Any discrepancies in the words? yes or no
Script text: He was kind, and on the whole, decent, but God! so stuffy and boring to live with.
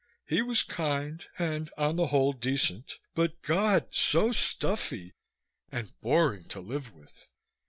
no